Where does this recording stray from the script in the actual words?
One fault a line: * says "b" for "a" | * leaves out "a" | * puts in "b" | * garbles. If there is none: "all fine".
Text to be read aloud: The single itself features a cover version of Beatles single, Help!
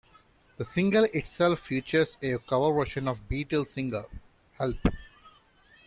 all fine